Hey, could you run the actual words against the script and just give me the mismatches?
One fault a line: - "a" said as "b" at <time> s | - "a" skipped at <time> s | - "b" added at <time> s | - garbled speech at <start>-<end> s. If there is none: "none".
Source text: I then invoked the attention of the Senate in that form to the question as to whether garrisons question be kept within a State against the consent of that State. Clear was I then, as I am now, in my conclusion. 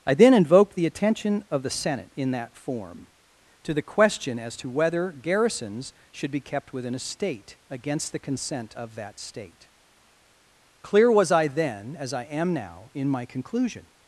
- "question" said as "should" at 6.1 s